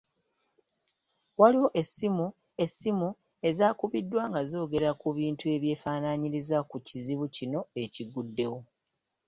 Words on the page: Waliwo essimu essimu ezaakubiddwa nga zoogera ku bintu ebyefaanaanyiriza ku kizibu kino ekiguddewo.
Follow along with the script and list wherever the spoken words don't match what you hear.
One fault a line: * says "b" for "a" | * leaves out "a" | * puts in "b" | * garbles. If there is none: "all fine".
all fine